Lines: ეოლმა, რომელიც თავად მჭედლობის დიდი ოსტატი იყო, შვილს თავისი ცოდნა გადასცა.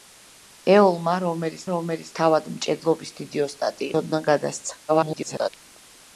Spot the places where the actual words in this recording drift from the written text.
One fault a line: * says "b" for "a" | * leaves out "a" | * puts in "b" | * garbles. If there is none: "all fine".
* puts in "რომელიც"
* leaves out "იყო შვილს თავისი"
* garbles